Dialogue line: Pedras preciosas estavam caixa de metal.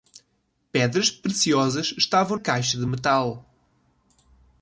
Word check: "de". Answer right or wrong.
right